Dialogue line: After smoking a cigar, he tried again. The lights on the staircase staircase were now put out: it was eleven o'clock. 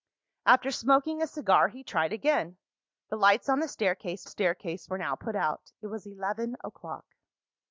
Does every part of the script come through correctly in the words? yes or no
yes